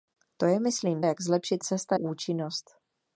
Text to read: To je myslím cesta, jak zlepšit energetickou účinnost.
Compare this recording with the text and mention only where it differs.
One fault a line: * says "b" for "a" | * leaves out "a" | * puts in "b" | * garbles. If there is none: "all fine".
* leaves out "cesta"
* says "cesta" for "energetickou"